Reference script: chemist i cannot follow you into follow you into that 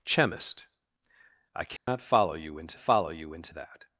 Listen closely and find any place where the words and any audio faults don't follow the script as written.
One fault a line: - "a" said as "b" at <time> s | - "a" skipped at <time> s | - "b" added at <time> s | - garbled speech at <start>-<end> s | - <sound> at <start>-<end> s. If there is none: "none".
- dropout at 1.8-1.9 s